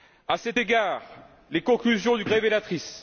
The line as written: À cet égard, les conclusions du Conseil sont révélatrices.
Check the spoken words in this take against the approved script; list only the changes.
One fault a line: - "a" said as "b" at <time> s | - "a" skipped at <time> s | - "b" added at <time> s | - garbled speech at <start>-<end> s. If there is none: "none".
- "Conseil sont" skipped at 2.2 s